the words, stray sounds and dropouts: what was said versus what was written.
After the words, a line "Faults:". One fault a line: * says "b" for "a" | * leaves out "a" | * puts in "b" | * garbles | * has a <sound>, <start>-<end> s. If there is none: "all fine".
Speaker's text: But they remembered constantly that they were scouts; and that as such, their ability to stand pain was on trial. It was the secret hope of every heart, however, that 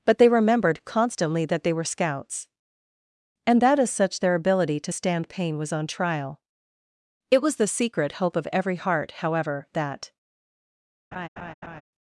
But they remembered constantly that they were scouts; and that as such, their ability to stand pain was on trial. It was the secret hope of every heart, however, that
Faults:
* has a laugh, 11.1-11.8 s